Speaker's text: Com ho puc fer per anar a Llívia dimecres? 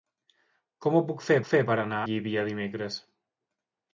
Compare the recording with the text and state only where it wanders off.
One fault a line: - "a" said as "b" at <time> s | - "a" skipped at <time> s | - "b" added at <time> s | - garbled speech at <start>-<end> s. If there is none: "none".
- "fer" added at 1.5 s
- "a" skipped at 2.0 s